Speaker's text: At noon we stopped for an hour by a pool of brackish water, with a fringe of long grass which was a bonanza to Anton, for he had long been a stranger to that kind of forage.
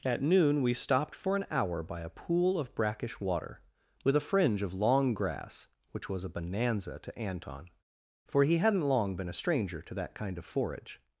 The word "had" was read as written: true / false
false